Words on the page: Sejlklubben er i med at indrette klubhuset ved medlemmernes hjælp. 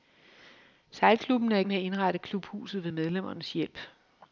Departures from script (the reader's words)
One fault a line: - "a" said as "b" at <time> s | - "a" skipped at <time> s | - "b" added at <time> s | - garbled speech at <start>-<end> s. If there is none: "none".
none